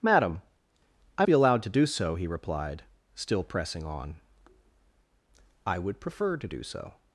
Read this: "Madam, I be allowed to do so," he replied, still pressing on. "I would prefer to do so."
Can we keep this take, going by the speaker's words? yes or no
yes